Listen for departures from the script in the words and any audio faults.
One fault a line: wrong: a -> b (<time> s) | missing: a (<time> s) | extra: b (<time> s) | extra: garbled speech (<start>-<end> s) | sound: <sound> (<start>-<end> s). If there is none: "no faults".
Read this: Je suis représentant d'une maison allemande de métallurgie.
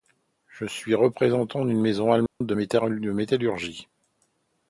sound: dropout (2.3-2.4 s)